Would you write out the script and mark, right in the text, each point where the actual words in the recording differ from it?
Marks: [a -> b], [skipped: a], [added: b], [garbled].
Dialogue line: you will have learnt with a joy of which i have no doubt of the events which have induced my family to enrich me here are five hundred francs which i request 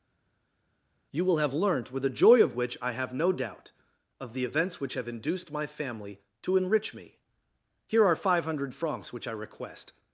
you will have learnt with a joy of which i have no doubt of the events which have induced my family to enrich me here are five hundred francs which i request